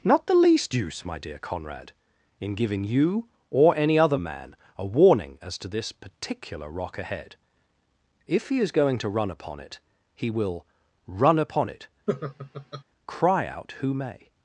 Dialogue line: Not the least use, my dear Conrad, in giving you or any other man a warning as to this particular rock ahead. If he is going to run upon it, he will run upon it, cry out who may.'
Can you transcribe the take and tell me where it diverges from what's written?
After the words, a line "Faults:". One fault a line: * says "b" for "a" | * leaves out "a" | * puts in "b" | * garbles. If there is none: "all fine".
Not the least use, my dear Conrad, in giving you or any other man a warning as to this particular rock ahead. If he is going to run upon it, he will run upon it, cry out who may.'
Faults:
all fine